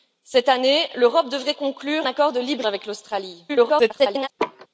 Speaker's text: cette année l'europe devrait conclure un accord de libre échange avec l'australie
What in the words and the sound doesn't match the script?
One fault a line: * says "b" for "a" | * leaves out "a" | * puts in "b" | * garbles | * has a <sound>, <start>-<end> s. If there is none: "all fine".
* leaves out "un"
* leaves out "échange"
* garbles
* has a laugh, 4.4-4.7 s